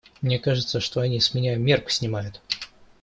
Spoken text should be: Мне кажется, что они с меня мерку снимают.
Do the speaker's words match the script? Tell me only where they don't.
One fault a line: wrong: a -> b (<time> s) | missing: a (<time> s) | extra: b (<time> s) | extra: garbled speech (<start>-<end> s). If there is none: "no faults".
no faults